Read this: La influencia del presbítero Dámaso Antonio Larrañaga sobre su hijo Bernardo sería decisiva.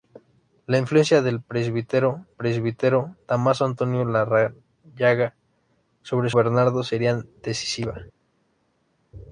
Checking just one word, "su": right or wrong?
wrong